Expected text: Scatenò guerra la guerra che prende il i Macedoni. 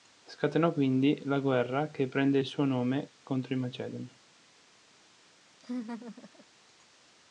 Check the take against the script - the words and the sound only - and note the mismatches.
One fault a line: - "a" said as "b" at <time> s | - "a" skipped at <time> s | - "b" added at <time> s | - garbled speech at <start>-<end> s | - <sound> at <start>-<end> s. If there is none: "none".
- "guerra" said as "quindi" at 0.7 s
- "suo nome contro" added at 2.4 s
- laugh at 5.5-6.5 s